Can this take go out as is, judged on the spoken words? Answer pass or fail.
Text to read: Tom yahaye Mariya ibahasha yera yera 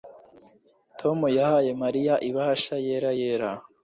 pass